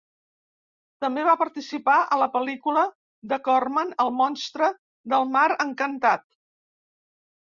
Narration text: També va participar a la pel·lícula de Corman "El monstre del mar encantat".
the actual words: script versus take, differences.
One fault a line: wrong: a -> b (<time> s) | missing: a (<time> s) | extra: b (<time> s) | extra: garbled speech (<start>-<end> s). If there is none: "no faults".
no faults